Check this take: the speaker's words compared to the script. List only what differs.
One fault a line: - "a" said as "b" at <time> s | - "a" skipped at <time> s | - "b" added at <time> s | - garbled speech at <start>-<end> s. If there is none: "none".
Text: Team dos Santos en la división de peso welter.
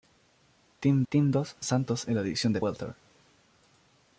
- "team" added at 1.1 s
- "peso" skipped at 2.6 s